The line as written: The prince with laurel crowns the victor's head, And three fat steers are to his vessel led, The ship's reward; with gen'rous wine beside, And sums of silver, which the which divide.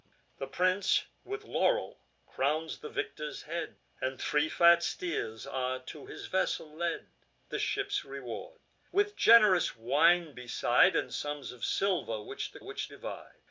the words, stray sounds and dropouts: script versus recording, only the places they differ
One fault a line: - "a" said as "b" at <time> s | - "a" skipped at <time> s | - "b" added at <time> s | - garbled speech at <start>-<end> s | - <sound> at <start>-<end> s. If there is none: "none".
none